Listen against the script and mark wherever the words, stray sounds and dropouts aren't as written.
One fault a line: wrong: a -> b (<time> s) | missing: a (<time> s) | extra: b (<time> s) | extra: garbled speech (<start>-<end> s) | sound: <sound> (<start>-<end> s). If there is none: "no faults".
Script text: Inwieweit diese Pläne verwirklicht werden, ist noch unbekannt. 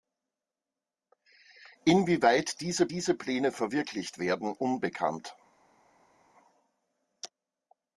extra: diese (2.9 s)
missing: ist noch (4.5 s)